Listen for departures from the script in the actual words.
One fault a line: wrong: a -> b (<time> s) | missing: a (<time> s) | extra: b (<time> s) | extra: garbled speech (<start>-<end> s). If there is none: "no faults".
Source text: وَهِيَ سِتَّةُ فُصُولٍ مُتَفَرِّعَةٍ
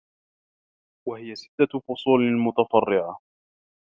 no faults